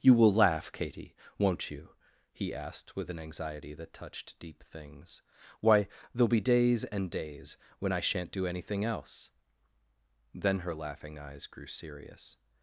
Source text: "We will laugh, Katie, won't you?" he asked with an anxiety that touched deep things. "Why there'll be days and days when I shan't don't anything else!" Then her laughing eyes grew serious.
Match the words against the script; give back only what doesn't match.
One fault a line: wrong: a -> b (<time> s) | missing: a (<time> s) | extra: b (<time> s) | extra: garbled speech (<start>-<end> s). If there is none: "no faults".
wrong: We -> You (0.0 s)
wrong: don't -> do (8.3 s)